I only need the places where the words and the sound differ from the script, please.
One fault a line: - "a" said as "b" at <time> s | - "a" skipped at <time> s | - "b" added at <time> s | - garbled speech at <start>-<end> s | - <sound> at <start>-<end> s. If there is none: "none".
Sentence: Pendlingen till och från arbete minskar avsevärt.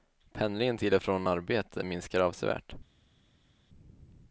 none